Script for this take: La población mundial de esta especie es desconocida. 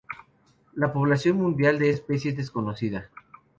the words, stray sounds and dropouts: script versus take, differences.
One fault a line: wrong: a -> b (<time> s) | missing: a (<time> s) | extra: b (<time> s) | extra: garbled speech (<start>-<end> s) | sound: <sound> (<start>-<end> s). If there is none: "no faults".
missing: esta (1.9 s)